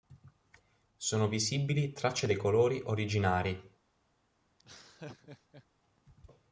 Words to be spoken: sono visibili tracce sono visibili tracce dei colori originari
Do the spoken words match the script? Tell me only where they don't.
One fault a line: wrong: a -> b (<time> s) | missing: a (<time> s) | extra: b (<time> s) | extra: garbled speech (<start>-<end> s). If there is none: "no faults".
missing: sono visibili tracce (2.2 s)